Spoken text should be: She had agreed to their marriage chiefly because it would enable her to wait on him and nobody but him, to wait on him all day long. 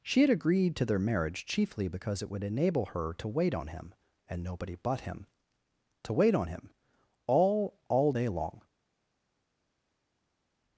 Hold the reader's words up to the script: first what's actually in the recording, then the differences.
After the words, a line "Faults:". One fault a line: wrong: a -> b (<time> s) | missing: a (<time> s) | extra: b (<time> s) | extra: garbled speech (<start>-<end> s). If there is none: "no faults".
She had agreed to their marriage chiefly because it would enable her to wait on him and nobody but him, to wait on him all all day long.
Faults:
extra: all (7.9 s)